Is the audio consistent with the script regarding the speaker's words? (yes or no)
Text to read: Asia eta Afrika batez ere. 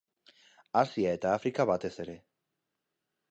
yes